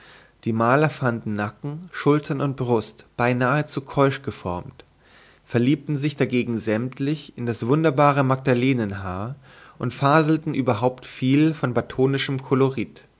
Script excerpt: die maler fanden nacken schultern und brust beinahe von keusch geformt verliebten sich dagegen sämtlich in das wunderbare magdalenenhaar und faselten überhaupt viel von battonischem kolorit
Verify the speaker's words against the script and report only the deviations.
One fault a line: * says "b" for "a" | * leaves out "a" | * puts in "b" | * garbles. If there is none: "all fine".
* says "zu" for "von"